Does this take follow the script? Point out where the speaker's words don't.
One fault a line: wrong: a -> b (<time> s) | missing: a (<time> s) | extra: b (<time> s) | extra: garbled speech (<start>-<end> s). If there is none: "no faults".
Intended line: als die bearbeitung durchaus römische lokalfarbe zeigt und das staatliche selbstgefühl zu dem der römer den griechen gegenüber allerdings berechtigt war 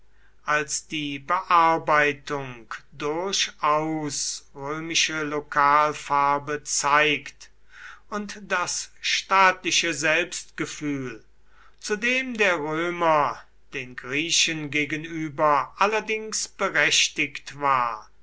no faults